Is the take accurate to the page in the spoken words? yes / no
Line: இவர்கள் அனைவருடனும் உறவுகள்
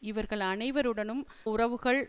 yes